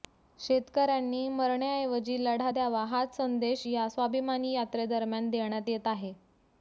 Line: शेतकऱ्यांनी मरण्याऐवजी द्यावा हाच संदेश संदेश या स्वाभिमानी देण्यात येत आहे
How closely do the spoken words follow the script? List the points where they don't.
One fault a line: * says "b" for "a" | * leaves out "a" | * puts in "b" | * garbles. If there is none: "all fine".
* puts in "लढा"
* leaves out "संदेश"
* puts in "यात्रेदरम्यान"